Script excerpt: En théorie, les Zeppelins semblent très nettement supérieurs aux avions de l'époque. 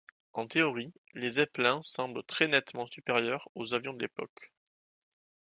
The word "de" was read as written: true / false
true